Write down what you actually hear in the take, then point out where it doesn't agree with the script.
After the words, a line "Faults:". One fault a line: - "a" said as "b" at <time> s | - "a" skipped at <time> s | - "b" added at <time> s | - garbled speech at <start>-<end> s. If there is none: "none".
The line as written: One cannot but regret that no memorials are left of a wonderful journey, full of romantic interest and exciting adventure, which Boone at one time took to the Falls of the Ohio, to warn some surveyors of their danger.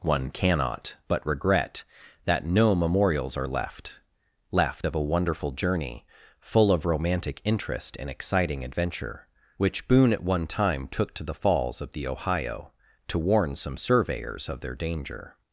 One cannot but regret that no memorials are left left of a wonderful journey, full of romantic interest and exciting adventure, which Boone at one time took to the Falls of the Ohio, to warn some surveyors of their danger.
Faults:
- "left" added at 4.5 s